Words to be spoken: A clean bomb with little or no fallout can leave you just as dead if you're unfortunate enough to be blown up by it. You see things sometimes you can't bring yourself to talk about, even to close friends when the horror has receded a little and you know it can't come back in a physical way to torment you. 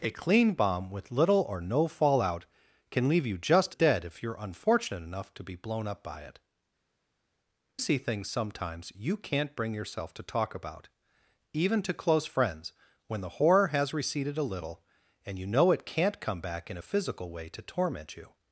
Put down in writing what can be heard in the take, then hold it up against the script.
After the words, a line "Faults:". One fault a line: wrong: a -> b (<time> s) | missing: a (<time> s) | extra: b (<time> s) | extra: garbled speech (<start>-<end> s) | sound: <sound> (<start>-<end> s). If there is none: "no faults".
A clean bomb with little or no fallout can leave you just dead if you're unfortunate enough to be blown up by it. See things sometimes you can't bring yourself to talk about, even to close friends when the horror has receded a little and you know it can't come back in a physical way to torment you.
Faults:
missing: as (3.8 s)
missing: You (6.4 s)